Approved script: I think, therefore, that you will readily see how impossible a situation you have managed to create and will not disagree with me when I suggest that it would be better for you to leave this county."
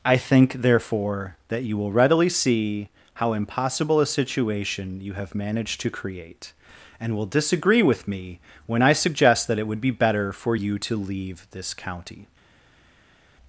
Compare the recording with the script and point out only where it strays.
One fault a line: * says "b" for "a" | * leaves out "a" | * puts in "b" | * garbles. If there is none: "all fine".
* leaves out "not"